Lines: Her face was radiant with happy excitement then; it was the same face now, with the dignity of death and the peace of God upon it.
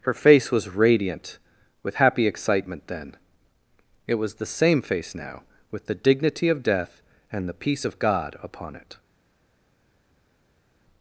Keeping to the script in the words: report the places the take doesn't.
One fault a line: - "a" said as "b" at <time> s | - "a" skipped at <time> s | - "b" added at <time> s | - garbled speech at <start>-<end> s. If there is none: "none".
none